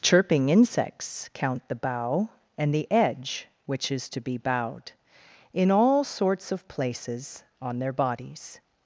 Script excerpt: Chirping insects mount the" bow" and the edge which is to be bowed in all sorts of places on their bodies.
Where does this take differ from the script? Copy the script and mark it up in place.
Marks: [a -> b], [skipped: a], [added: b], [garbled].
Chirping insects [mount -> count] the" bow" and the edge which is to be bowed in all sorts of places on their bodies.